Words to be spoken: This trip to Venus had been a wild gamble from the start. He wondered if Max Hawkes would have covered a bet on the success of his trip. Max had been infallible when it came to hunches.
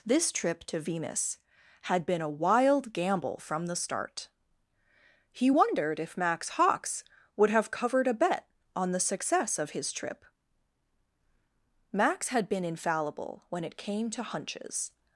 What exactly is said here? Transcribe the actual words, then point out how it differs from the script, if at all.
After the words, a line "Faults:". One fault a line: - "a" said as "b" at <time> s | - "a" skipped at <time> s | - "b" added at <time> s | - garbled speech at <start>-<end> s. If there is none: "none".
This trip to Venus had been a wild gamble from the start. He wondered if Max Hawkes would have covered a bet on the success of his trip. Max had been infallible when it came to hunches.
Faults:
none